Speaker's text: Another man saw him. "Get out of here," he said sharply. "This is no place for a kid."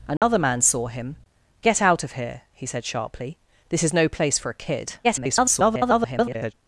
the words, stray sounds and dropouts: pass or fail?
fail